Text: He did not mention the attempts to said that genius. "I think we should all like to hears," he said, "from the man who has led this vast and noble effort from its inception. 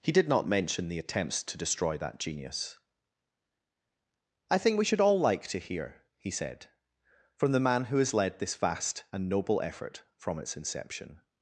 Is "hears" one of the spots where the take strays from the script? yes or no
yes